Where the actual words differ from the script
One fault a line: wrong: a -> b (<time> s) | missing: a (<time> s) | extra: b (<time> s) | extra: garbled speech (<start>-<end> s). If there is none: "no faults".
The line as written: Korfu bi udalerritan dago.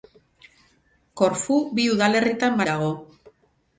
no faults